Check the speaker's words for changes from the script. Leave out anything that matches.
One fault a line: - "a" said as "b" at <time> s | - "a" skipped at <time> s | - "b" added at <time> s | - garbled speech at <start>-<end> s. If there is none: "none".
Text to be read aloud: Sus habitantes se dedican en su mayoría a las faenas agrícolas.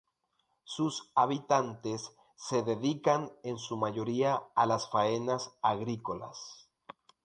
none